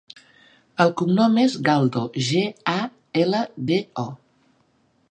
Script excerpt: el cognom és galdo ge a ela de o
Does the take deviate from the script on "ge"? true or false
false